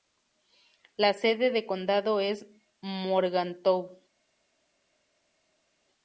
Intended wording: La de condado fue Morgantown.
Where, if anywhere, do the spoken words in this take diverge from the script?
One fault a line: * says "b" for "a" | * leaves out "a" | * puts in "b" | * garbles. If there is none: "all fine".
* puts in "sede"
* says "es" for "fue"